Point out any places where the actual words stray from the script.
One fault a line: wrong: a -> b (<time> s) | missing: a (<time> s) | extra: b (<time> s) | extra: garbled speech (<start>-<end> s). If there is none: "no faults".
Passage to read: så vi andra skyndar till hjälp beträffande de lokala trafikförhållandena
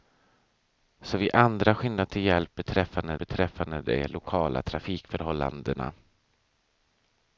extra: beträffande (3.2 s)